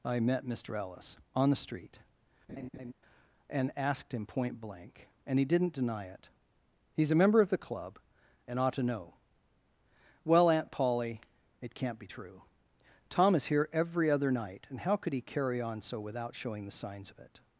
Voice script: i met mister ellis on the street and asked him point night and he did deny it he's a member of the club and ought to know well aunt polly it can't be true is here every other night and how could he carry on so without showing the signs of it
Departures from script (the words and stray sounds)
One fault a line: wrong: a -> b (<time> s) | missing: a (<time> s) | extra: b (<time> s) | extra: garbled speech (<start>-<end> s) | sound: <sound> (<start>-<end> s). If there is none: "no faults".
sound: laugh (2.5-2.9 s)
wrong: night -> blank (4.6 s)
wrong: did -> didn't (5.4 s)
extra: tom (13.1 s)